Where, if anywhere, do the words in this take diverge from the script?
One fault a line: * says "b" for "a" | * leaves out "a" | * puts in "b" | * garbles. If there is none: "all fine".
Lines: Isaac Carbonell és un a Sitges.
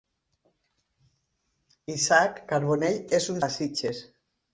all fine